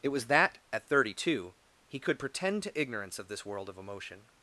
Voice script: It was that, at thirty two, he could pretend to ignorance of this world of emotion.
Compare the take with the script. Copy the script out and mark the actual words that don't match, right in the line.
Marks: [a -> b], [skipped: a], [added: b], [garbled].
It was that, at thirty two, he could pretend to ignorance of this world of emotion.